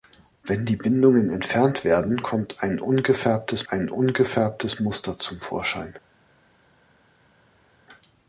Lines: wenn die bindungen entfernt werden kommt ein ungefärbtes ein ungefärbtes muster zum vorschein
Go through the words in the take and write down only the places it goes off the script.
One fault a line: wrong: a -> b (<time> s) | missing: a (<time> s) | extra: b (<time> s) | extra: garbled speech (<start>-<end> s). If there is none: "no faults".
no faults